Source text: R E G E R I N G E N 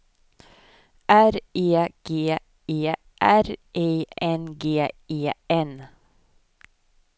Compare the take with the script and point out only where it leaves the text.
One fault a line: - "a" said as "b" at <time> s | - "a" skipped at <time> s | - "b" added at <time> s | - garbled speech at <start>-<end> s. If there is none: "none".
none